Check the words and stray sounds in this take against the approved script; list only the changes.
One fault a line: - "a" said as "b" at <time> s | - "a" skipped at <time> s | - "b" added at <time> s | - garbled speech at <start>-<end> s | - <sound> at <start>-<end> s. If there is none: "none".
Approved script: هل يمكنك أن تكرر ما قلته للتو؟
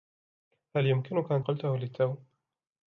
- "تكرر ما" skipped at 1.4 s